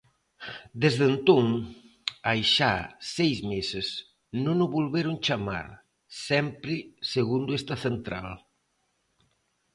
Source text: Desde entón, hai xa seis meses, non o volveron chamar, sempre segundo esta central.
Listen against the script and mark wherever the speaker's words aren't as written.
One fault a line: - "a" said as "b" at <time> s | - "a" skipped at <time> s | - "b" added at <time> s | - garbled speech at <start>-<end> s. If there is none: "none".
none